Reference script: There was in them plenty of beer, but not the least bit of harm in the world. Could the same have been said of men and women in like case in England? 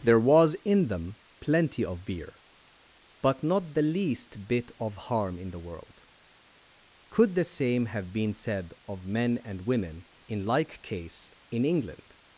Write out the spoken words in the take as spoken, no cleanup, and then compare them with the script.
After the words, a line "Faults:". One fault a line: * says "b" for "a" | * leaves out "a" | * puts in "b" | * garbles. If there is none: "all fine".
There was in them plenty of beer, but not the least bit of harm in the world. Could the same have been said of men and women in like case in England?
Faults:
all fine